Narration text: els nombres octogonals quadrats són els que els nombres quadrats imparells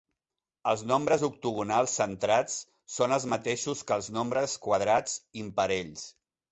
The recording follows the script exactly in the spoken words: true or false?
false